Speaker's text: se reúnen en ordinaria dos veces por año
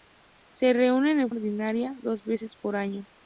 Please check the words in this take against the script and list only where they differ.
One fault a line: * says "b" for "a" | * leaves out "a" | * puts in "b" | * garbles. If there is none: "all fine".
all fine